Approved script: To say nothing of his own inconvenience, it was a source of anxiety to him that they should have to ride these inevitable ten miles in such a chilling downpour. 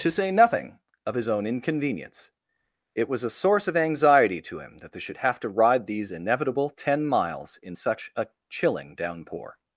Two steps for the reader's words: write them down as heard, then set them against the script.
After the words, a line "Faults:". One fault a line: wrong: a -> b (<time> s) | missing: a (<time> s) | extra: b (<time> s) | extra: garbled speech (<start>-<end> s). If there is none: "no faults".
To say nothing of his own inconvenience, it was a source of anxiety to him that they should have to ride these inevitable ten miles in such a chilling downpour.
Faults:
no faults